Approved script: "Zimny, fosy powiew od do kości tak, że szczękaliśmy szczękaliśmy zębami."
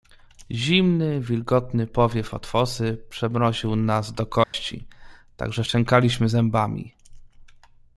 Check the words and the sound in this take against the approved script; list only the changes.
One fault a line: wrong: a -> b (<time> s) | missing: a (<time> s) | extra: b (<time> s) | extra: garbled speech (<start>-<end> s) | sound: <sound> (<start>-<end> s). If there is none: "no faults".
wrong: fosy -> wilgotny (1.2 s)
extra: fosy przemroził nas (2.5 s)
sound: dropout (4.4-4.5 s)
missing: szczękaliśmy (6.3 s)